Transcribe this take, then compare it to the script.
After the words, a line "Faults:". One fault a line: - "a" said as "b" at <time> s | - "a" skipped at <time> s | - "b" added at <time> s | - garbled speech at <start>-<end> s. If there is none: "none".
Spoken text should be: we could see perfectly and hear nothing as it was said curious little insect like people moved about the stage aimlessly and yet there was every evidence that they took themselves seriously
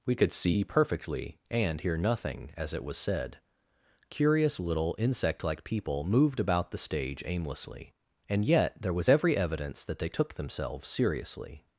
we could see perfectly and hear nothing as it was said curious little insect like people moved about the stage aimlessly and yet there was every evidence that they took themselves seriously
Faults:
none